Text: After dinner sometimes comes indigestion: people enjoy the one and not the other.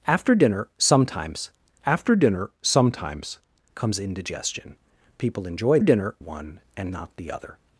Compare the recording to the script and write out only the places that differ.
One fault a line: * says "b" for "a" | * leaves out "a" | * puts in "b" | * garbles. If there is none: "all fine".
* puts in "after dinner sometimes"
* says "dinner" for "the"